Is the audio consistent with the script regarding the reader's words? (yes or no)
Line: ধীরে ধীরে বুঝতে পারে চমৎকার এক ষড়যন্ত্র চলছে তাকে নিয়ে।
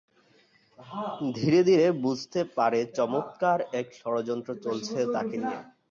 yes